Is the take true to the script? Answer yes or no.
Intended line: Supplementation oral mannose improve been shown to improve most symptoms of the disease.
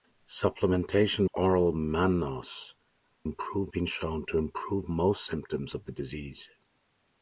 yes